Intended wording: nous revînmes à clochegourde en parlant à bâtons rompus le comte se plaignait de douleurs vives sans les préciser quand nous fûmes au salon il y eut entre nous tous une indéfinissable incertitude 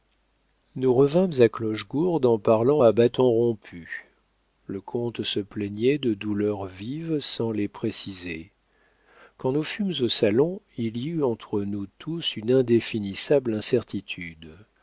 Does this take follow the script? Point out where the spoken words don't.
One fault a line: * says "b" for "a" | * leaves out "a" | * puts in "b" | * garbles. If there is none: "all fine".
all fine